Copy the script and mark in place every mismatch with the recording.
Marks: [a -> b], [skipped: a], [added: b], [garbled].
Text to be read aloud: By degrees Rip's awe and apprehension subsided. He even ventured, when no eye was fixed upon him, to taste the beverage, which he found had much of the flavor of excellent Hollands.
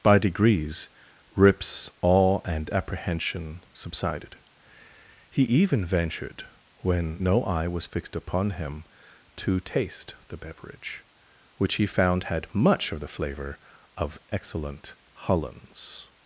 By degrees Rip's awe and apprehension subsided. He even ventured, when no eye was fixed upon him, to taste the beverage, which he found had much of the flavor of excellent Hollands.